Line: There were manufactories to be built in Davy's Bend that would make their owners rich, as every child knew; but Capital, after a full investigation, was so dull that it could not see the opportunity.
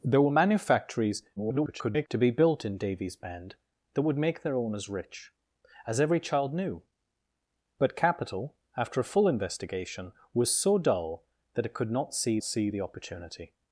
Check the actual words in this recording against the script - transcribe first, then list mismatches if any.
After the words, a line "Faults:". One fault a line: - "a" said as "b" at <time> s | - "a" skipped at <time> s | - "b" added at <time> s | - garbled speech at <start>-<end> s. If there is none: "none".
There were manufactories [garbled] to be built in Davy's Bend that would make their owners rich, as every child knew; but Capital, after a full investigation, was so dull that it could not see see the opportunity.
Faults:
- garbled speech at 1.4-2.1 s
- "see" added at 12.4 s